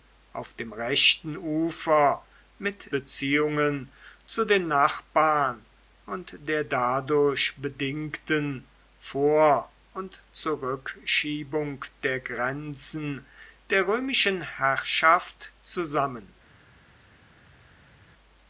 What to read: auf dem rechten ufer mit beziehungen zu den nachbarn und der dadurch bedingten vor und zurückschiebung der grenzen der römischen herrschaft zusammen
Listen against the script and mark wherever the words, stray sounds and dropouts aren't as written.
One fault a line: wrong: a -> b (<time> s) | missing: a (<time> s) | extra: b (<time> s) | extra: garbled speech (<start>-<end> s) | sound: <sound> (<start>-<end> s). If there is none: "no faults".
no faults